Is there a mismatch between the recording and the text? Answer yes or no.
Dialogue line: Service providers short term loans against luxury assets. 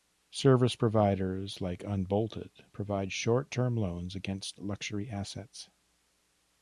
yes